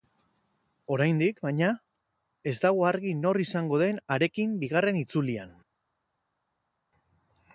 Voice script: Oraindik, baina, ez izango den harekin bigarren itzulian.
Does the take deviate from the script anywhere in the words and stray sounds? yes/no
yes